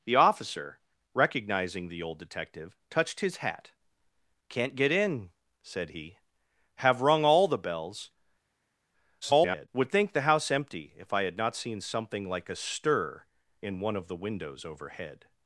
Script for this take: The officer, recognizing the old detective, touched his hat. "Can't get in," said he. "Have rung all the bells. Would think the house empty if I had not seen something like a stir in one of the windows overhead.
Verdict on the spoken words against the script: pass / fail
fail